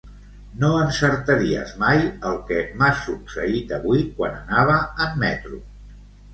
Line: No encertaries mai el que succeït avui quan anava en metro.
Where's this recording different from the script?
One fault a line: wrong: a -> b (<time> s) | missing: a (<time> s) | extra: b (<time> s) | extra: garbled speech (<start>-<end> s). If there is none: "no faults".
extra: m'ha (2.8 s)